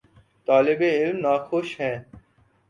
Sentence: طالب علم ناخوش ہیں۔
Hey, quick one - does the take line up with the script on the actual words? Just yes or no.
yes